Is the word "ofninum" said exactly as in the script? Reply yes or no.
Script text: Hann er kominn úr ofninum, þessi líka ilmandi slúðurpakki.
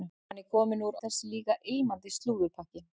no